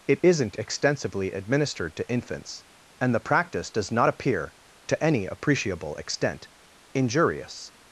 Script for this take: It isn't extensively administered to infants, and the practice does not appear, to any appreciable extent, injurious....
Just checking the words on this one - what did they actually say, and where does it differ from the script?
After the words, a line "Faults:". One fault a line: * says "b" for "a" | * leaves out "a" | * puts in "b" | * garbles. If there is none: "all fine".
It isn't extensively administered to infants, and the practice does not appear, to any appreciable extent, injurious....
Faults:
all fine